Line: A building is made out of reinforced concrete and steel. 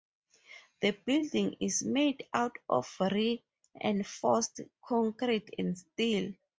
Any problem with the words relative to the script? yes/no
yes